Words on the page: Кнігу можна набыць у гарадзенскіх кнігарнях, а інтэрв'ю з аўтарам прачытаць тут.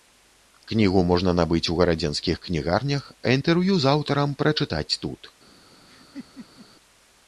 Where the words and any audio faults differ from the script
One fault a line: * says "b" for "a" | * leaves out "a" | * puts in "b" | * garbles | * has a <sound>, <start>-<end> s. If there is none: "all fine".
* has a laugh, 5.9-6.7 s